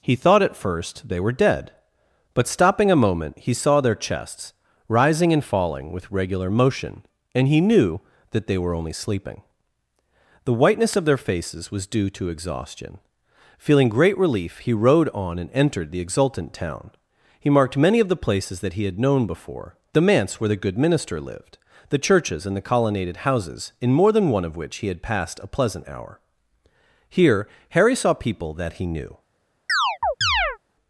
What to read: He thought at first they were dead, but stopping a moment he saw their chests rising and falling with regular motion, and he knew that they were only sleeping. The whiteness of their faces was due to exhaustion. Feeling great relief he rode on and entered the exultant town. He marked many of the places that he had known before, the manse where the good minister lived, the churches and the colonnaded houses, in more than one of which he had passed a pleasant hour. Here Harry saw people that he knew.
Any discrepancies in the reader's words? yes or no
no